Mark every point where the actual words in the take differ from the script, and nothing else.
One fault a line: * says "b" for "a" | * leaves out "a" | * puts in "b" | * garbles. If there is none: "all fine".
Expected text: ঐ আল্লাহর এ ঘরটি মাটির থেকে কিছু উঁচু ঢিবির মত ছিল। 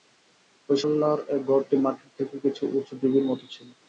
all fine